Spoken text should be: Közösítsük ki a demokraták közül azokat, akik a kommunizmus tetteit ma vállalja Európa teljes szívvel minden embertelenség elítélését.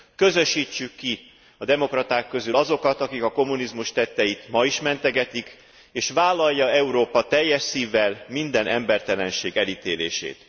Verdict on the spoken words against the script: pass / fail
fail